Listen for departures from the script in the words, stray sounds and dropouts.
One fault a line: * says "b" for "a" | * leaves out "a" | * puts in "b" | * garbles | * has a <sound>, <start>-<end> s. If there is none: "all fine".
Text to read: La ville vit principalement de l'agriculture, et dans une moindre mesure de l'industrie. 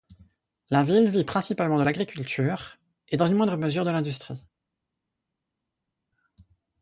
all fine